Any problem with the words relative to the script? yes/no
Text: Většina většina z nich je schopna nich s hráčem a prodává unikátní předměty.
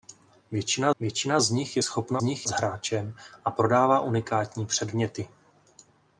no